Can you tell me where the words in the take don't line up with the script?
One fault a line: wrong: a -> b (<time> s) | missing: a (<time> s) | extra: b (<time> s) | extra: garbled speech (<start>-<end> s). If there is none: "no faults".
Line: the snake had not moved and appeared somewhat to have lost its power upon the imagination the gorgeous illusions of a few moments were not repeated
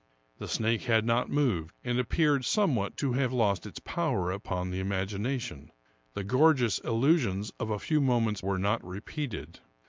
no faults